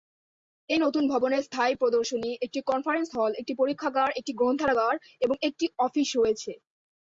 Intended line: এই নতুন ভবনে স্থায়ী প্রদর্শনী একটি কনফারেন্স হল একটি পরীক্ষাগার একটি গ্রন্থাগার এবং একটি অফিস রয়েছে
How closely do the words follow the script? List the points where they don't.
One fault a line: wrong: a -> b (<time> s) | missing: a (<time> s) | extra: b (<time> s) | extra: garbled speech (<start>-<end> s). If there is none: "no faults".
no faults